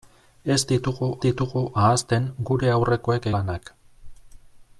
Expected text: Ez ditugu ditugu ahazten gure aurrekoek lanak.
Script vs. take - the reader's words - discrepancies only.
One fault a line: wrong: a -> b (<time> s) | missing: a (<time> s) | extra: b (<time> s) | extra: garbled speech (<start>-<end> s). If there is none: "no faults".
no faults